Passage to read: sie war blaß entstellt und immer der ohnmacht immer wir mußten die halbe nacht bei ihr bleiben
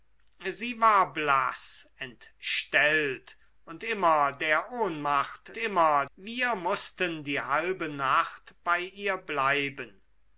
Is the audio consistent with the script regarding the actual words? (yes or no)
yes